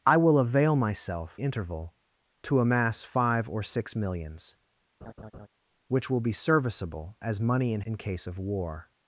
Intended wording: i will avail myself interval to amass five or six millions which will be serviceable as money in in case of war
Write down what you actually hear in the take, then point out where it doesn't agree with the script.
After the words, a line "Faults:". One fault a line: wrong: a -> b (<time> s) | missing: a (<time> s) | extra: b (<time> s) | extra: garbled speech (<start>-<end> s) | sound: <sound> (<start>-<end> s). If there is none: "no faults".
i will avail myself interval to amass five or six millions which will be serviceable as money in in case of war
Faults:
sound: laugh (5.0-5.5 s)